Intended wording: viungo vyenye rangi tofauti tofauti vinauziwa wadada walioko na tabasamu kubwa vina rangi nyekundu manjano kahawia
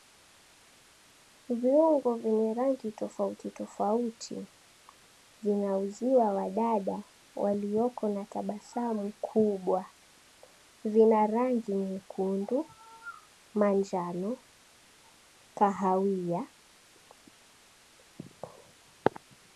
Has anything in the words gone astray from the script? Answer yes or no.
no